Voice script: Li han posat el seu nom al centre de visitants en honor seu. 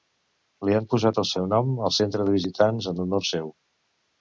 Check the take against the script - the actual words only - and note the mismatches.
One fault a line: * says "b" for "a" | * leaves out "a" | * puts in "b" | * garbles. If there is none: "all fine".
all fine